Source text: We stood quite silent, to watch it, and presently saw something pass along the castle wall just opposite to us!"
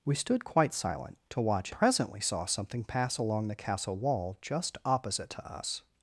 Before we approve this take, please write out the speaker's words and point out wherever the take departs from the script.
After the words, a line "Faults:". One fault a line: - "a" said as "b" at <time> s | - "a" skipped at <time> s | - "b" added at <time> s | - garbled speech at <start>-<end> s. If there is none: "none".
We stood quite silent, to watch presently saw something pass along the castle wall just opposite to us!"
Faults:
- "it and" skipped at 1.7 s